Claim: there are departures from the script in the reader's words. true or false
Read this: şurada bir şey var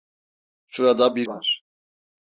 true